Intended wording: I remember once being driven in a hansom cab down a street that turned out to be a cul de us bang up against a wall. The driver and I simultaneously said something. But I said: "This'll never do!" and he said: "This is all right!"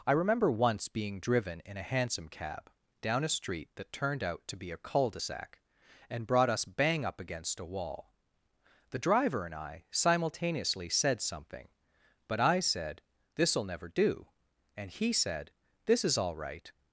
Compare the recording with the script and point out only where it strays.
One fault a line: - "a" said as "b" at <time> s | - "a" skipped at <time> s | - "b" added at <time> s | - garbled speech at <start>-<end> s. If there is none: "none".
- "sac and brought" added at 5.2 s